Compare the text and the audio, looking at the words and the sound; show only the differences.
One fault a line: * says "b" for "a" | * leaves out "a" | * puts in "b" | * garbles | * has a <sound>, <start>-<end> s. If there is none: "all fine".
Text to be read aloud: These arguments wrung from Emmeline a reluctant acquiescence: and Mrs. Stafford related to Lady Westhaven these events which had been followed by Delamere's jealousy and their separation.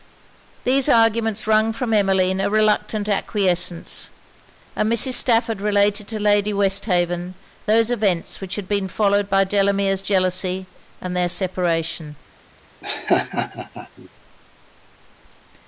* says "those" for "these"
* has a laugh, 12.8-14.1 s